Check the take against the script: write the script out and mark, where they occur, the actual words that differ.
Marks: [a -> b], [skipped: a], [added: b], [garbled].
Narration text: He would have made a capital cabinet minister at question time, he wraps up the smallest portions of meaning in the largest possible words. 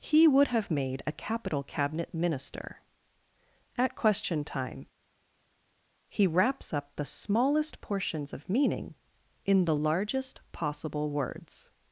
He would have made a capital cabinet minister at question time, he wraps up the smallest portions of meaning in the largest possible words.